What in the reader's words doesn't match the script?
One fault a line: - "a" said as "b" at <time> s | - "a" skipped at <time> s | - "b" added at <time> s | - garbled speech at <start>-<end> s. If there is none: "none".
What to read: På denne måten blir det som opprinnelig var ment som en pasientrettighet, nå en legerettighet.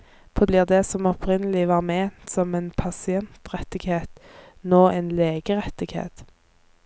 - "denne måten" skipped at 0.5 s